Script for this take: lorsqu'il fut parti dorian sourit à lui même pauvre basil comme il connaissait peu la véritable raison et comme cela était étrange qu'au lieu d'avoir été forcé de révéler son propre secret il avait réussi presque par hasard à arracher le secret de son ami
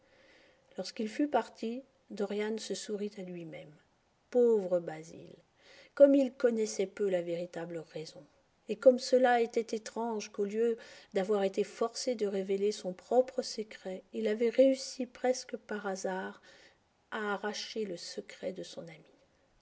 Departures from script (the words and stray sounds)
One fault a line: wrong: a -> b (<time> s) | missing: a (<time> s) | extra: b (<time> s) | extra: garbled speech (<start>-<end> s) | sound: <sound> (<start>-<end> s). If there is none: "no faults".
extra: se (2.6 s)